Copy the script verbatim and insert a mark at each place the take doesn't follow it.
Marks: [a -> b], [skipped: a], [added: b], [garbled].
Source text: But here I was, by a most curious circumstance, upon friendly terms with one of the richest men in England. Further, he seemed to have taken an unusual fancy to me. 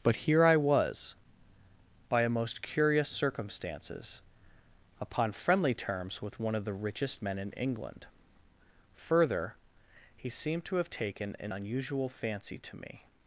But here I was, by a most curious [circumstance, -> circumstances] upon friendly terms with one of the richest men in England. Further, he seemed to have taken an unusual fancy to me.